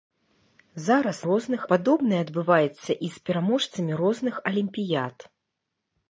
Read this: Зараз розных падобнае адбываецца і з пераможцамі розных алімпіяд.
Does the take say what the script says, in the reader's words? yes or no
yes